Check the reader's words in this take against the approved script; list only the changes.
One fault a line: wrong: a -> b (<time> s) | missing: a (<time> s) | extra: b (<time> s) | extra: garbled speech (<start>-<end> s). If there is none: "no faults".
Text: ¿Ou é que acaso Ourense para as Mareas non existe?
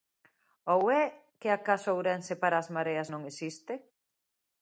no faults